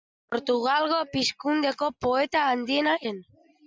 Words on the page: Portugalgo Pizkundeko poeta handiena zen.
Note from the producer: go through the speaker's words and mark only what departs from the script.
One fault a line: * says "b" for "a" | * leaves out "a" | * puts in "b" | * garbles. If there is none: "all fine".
all fine